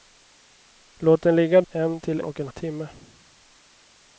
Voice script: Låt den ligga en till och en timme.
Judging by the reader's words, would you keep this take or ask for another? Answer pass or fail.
pass